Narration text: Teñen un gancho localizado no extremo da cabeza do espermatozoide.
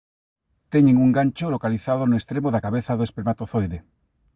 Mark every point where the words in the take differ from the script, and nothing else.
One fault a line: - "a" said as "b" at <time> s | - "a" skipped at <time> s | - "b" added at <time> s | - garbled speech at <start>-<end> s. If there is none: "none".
none